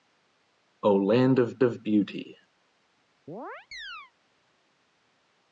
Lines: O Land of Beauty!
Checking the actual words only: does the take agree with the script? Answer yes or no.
no